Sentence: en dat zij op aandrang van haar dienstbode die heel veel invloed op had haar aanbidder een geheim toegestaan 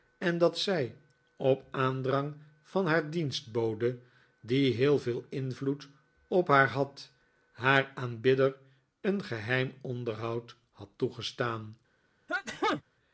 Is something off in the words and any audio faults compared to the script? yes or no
yes